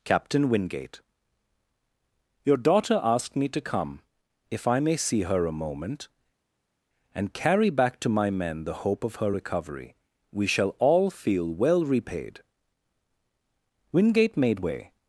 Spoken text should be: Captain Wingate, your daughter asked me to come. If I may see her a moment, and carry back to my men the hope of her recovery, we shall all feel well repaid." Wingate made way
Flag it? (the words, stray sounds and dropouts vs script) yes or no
no